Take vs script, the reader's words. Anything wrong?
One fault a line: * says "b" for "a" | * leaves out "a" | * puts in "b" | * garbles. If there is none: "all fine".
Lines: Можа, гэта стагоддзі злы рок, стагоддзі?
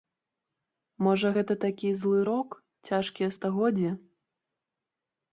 * says "такі" for "стагоддзі"
* puts in "цяжкія"